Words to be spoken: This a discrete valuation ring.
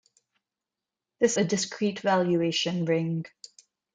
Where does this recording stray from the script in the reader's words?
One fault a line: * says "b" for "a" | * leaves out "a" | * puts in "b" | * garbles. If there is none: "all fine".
all fine